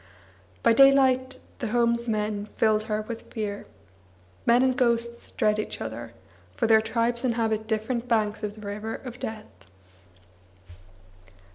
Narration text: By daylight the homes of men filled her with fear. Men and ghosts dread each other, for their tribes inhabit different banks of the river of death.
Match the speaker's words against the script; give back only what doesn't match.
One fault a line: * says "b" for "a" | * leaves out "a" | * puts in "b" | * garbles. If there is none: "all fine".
* leaves out "of"